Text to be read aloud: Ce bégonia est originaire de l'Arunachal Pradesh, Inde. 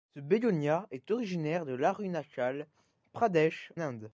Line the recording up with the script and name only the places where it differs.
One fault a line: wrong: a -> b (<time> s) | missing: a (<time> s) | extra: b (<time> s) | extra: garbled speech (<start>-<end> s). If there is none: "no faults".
no faults